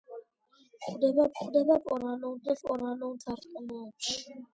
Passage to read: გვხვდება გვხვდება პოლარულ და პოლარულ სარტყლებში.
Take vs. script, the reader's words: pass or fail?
pass